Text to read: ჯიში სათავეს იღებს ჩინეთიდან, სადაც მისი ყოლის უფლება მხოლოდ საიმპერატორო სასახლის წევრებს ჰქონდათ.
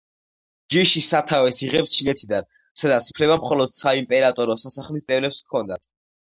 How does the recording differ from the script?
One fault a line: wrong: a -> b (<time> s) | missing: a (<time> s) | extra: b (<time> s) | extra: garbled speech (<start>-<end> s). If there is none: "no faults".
missing: მისი ყოლის (3.1 s)